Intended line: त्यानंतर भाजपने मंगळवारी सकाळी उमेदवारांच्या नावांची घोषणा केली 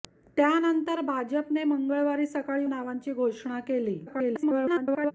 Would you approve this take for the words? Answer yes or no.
no